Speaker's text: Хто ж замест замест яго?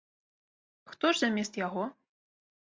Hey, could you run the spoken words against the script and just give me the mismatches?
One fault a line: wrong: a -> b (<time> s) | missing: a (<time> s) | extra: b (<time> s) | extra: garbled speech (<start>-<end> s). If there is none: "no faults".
missing: замест (1.6 s)